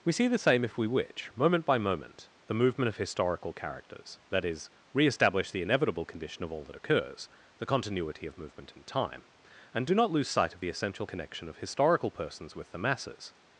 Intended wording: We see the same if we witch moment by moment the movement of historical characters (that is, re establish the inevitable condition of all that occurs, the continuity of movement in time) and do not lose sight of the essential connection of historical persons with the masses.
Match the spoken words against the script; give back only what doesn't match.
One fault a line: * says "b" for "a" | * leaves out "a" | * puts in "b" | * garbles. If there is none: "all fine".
all fine